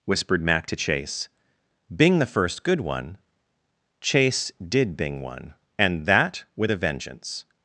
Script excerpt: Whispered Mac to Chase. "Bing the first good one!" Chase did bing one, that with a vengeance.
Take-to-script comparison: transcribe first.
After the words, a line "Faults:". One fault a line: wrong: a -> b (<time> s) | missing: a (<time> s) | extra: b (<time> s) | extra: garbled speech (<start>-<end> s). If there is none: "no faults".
Whispered Mac to Chase. "Bing the first good one!" Chase did bing one, and that with a vengeance.
Faults:
extra: and (5.8 s)